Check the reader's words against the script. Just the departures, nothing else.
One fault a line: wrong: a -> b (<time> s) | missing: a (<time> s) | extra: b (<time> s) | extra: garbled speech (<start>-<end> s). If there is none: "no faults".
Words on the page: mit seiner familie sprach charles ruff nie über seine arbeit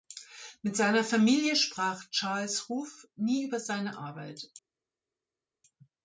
no faults